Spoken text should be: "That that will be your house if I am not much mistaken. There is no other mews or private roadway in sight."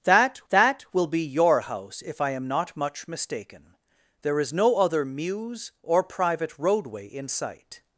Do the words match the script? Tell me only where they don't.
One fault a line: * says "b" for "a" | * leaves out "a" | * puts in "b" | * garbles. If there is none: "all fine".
all fine